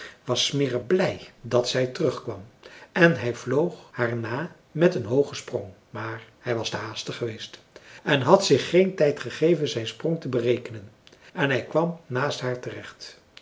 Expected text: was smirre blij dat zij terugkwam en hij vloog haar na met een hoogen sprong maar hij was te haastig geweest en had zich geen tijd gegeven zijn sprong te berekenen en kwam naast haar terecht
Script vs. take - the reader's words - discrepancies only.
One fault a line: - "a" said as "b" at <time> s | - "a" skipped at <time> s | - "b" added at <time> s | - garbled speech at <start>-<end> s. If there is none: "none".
- "hij" added at 11.5 s